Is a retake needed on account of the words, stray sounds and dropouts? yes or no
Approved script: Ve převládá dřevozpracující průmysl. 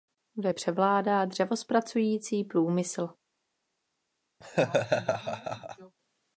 yes